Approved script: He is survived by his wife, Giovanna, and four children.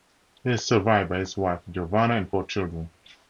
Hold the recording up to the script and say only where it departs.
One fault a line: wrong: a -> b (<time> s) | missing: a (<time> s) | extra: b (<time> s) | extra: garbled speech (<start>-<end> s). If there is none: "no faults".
no faults